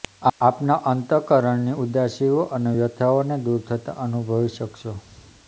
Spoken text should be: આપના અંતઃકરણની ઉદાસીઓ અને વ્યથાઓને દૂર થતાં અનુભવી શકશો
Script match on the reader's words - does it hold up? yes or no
yes